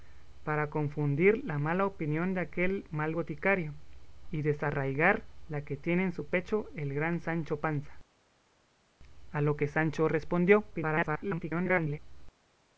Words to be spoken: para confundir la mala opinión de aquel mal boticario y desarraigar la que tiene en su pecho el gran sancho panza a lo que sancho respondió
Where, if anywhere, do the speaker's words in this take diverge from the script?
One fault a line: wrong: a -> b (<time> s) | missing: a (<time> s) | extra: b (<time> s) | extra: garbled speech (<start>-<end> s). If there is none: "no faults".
extra: garbled speech (10.7-12.0 s)